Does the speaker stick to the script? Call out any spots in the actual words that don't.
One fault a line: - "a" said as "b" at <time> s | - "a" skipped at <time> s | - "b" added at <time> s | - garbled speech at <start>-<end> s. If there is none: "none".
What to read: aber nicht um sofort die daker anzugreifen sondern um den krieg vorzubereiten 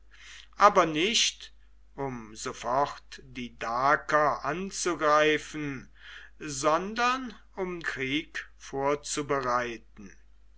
- "den" skipped at 7.8 s